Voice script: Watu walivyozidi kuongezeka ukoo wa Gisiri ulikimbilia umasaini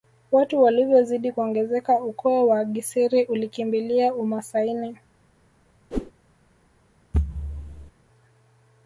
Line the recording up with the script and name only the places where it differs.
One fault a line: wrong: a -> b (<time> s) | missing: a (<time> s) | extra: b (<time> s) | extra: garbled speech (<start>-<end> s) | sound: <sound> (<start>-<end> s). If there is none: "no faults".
sound: whoosh (5.9-6.1 s)
sound: thud (7.1-7.9 s)